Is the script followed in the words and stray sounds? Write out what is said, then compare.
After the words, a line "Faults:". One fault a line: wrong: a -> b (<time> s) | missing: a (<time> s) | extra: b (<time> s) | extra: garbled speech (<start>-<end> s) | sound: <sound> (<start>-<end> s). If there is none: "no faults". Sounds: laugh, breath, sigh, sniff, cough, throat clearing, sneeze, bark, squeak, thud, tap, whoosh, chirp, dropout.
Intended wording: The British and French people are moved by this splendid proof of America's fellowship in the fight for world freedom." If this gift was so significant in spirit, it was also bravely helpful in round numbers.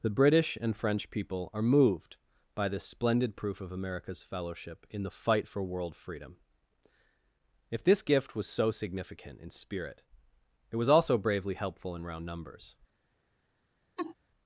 The British and French people are moved by this splendid proof of America's fellowship in the fight for world freedom." If this gift was so significant in spirit, it was also bravely helpful in round numbers.
Faults:
sound: laugh (14.0-14.1 s)